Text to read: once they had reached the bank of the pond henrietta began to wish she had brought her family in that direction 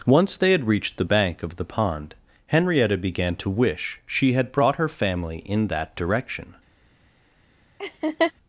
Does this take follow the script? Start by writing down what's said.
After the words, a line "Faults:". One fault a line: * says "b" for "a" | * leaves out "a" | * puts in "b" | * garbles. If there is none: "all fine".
once they had reached the bank of the pond henrietta began to wish she had brought her family in that direction
Faults:
all fine